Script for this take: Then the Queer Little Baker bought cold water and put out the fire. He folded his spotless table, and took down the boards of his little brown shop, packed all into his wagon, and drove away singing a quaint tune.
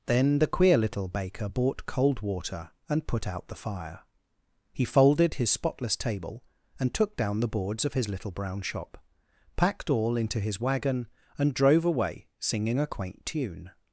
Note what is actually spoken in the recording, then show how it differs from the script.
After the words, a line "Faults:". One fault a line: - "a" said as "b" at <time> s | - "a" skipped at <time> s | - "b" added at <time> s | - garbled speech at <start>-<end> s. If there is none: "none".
Then the Queer Little Baker bought cold water and put out the fire. He folded his spotless table, and took down the boards of his little brown shop, packed all into his wagon, and drove away singing a quaint tune.
Faults:
none